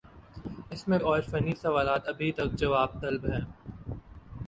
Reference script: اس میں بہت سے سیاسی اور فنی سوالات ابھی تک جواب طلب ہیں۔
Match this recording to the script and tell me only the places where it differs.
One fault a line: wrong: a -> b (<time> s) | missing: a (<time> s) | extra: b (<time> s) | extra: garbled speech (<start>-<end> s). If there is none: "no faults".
missing: بہت سے سیاسی (1.0 s)